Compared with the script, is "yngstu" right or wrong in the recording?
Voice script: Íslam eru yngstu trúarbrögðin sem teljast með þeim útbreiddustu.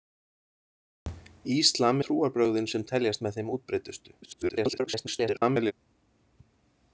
wrong